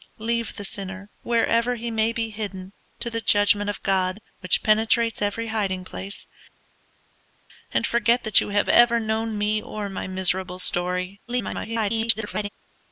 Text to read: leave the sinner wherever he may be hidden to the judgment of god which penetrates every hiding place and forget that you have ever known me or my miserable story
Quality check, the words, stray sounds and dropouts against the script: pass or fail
fail